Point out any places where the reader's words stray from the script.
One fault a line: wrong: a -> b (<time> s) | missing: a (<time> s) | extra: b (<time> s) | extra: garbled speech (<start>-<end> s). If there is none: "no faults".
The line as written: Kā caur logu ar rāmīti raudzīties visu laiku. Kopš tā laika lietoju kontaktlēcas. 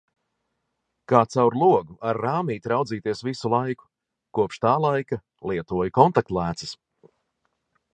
no faults